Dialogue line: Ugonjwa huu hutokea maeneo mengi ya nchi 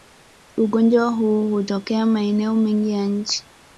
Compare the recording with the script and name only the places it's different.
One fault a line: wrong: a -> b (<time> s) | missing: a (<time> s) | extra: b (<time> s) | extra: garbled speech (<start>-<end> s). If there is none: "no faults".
no faults